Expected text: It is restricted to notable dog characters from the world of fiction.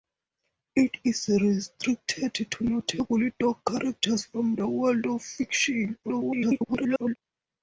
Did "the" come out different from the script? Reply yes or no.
no